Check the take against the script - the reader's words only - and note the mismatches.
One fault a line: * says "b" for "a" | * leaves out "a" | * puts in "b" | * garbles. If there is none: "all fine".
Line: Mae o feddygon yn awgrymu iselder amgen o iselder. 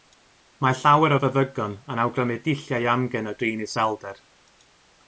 * puts in "llawer"
* says "dulliau" for "iselder"
* puts in "drin"